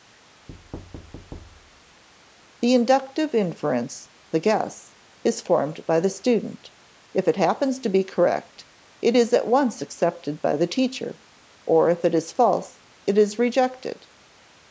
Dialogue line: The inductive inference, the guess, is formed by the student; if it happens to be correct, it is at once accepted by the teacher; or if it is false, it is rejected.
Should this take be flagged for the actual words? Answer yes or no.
no